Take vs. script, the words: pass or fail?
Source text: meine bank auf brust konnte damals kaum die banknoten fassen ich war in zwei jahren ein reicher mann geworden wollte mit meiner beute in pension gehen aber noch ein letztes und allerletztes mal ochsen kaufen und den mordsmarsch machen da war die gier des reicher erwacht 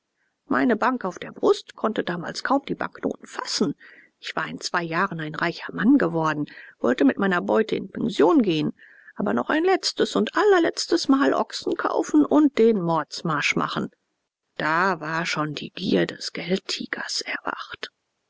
fail